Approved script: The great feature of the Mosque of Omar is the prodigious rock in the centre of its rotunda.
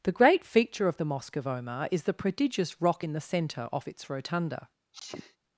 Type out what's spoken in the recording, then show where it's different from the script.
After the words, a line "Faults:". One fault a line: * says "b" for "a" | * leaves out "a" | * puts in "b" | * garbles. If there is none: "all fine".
The great feature of the Mosque of Omar is the prodigious rock in the centre off its rotunda.
Faults:
* says "off" for "of"